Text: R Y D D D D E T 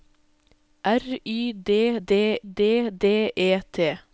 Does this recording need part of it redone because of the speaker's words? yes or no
no